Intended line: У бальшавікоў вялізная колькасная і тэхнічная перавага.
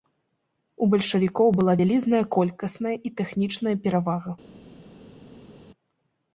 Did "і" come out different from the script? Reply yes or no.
no